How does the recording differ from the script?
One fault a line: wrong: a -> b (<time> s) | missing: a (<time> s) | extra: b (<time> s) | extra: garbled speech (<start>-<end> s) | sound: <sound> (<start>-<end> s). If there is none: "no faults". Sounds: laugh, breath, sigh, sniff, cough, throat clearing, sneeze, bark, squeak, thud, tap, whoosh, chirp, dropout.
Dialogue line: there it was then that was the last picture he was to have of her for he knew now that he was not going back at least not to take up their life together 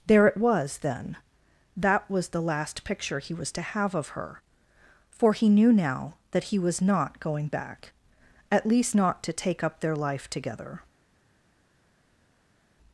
no faults